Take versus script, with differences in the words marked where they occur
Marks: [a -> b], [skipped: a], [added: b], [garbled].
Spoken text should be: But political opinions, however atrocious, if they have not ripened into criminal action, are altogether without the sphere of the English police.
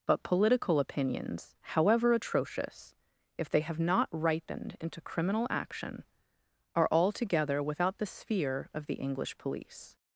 But political opinions, however atrocious, if they have not ripened into criminal action, are altogether without the sphere of the English police.